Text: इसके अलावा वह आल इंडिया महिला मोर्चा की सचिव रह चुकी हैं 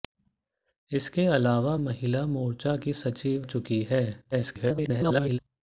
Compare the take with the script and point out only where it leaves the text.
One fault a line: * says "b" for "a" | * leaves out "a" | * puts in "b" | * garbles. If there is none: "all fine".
* leaves out "वह आल इंडिया"
* leaves out "रह"
* garbles